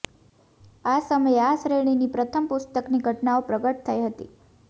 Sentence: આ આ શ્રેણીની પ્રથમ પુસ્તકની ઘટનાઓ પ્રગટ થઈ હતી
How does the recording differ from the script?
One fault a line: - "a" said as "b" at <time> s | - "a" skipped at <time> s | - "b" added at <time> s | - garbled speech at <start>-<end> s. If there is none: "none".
- "સમયે" added at 1.0 s